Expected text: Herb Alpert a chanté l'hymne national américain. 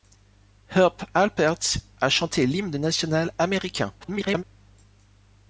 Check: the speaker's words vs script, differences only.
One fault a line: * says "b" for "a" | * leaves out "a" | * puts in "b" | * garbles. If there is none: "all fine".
* garbles